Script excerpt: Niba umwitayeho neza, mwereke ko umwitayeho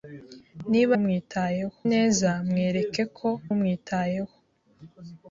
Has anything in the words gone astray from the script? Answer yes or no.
no